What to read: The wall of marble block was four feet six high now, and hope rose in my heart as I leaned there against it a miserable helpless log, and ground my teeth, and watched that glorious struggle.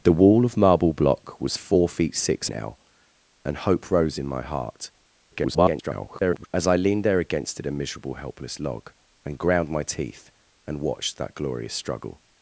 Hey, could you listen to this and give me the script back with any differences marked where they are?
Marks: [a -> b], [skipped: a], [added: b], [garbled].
The wall of marble block was four feet six [skipped: high] now, and hope rose in my heart [garbled] as I leaned there against it a miserable helpless log, and ground my teeth, and watched that glorious struggle.